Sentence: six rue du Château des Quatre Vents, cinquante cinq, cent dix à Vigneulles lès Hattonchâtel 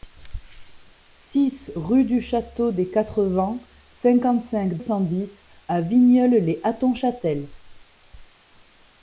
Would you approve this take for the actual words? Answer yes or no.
yes